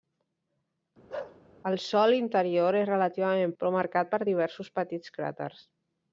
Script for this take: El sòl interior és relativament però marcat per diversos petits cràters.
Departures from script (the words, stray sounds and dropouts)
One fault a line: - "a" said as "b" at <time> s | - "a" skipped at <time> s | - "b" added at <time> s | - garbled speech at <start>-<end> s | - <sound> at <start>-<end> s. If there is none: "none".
- bark at 1.1-1.4 s